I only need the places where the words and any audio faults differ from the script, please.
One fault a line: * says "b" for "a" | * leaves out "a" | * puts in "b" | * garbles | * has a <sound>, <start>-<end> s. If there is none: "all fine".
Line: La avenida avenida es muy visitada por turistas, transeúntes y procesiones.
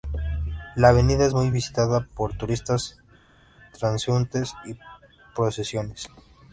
* leaves out "avenida"